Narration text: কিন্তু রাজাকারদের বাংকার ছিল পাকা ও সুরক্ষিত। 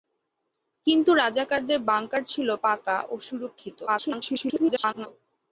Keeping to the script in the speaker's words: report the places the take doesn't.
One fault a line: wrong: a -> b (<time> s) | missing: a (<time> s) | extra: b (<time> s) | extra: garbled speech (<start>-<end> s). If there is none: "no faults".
extra: garbled speech (3.9-5.1 s)